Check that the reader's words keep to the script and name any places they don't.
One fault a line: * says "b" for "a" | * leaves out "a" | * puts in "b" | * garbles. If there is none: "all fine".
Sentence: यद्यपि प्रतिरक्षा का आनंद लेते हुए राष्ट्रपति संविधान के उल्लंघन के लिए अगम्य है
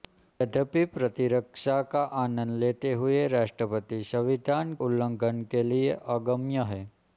* leaves out "के"